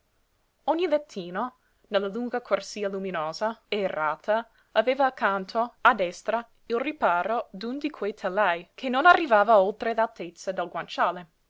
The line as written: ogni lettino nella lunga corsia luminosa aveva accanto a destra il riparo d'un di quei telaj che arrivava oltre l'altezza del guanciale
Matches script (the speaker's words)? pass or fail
fail